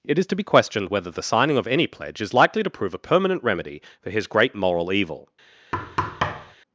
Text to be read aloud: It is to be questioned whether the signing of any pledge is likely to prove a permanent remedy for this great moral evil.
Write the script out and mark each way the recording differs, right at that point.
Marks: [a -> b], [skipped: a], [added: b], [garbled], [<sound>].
It is to be questioned whether the signing of any pledge is likely to prove a permanent remedy for [this -> his] great moral evil. [thud]